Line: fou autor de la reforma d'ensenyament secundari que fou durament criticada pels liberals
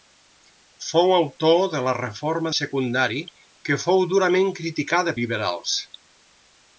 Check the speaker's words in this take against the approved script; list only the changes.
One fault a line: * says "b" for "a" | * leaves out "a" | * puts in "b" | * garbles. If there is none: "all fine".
* leaves out "d'ensenyament"
* leaves out "pels"